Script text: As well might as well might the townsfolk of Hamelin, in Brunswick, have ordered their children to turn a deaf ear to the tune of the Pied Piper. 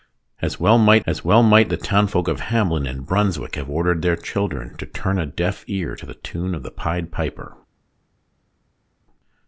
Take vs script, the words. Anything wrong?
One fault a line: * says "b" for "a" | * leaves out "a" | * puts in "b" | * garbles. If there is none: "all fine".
all fine